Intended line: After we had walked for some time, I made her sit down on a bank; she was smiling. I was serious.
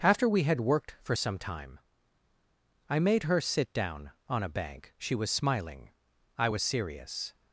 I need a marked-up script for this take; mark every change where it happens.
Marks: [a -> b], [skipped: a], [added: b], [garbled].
After we had [walked -> worked] for some time, I made her sit down on a bank; she was smiling. I was serious.